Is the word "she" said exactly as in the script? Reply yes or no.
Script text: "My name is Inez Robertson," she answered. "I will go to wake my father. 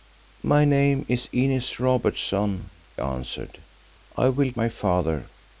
no